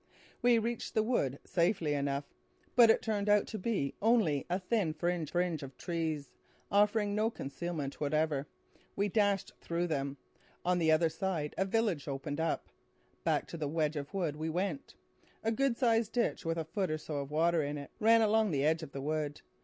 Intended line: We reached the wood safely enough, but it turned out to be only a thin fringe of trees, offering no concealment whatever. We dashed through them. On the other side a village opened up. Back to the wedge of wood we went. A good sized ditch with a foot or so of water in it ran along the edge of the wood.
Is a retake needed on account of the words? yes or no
yes